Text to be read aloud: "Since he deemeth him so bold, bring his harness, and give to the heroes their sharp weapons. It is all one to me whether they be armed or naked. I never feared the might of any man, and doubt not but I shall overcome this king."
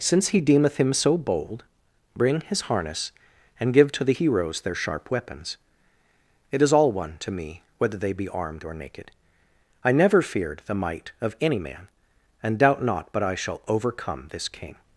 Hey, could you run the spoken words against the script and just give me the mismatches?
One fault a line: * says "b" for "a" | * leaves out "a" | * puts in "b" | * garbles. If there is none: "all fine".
all fine